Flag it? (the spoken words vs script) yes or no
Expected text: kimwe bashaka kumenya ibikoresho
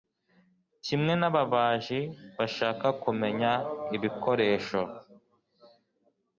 yes